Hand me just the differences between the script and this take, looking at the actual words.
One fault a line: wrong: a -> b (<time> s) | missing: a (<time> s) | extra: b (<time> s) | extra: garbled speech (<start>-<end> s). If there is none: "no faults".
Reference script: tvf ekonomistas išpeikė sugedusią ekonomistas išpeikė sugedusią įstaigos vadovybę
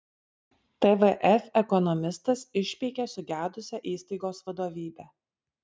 missing: ekonomistas išpeikė sugedusią (3.8 s)